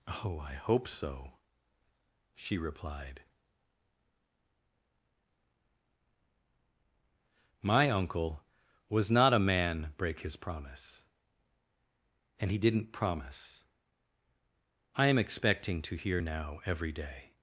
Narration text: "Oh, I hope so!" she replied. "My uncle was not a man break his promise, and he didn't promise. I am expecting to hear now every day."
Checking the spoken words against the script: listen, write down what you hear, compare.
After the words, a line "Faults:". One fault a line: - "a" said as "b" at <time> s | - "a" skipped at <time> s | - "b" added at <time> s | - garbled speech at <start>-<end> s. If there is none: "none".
"Oh, I hope so!" she replied. "My uncle was not a man break his promise, and he didn't promise. I am expecting to hear now every day."
Faults:
none